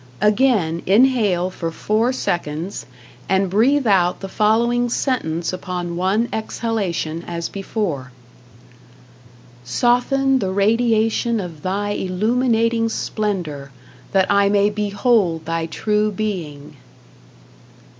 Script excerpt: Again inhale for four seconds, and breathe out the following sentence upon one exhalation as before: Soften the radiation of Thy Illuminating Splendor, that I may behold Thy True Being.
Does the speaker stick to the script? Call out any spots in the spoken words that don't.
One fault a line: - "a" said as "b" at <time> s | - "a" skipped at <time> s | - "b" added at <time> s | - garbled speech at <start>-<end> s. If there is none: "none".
none